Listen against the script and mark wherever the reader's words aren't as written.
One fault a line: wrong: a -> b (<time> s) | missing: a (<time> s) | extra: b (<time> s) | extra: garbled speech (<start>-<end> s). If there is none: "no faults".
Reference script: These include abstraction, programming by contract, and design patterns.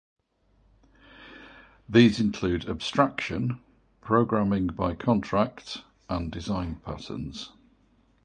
no faults